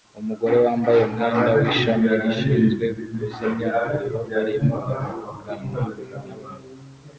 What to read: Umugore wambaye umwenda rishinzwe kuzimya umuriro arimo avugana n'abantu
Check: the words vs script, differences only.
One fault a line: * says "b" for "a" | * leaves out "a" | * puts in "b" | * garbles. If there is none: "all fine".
* puts in "w'ishami"